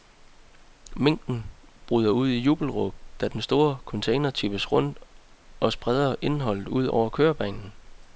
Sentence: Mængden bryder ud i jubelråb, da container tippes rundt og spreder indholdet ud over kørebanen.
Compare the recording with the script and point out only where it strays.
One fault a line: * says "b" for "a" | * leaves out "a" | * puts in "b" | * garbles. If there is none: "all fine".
* puts in "den store"